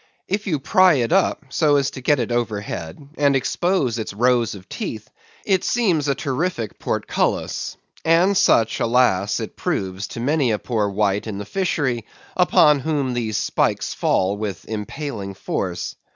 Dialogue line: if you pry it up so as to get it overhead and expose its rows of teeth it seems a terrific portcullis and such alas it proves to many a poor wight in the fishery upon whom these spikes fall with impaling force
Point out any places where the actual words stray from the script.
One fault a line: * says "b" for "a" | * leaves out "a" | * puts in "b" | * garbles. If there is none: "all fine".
all fine